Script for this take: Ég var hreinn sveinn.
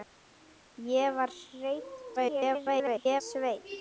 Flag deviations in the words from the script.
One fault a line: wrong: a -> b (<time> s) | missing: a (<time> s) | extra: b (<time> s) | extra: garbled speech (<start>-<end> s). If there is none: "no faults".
extra: garbled speech (2.2-3.2 s)